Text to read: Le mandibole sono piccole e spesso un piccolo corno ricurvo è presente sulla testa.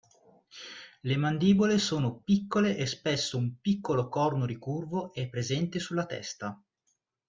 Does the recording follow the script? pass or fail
pass